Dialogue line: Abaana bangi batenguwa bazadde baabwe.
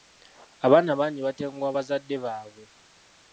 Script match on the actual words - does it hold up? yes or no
yes